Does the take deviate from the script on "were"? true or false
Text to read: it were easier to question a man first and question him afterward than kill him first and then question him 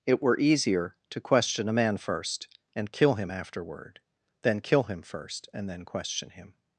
false